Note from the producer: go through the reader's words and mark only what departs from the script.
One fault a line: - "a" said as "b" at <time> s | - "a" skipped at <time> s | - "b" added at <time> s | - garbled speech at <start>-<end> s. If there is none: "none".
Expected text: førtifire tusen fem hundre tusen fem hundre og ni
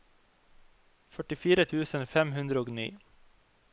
- "tusen fem hundre" skipped at 2.6 s